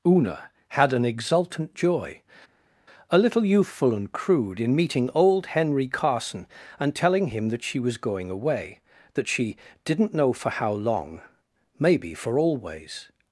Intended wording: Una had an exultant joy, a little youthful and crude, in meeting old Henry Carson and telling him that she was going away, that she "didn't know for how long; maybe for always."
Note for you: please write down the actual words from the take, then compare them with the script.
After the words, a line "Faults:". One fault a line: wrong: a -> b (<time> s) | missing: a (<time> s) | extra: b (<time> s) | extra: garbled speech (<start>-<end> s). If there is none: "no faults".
Una had an exultant joy, a little youthful and crude, in meeting old Henry Carson and telling him that she was going away, that she "didn't know for how long; maybe for always."
Faults:
no faults